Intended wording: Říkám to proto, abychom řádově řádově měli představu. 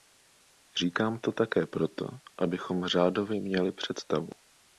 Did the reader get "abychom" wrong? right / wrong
right